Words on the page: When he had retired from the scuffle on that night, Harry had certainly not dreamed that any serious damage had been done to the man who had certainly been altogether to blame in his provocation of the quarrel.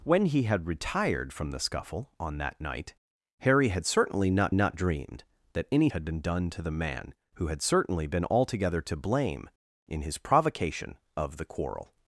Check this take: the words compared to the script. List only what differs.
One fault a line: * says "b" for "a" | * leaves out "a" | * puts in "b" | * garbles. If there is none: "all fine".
* puts in "not"
* leaves out "serious damage"